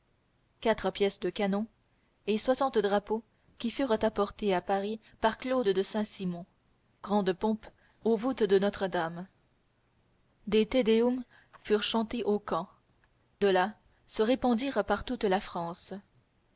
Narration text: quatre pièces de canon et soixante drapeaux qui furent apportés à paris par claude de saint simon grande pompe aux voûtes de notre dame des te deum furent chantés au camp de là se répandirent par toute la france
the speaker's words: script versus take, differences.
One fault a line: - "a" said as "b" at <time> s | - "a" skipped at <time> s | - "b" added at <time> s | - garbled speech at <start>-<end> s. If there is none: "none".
none